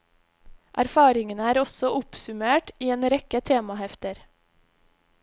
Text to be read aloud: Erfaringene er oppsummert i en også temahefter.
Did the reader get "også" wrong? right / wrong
wrong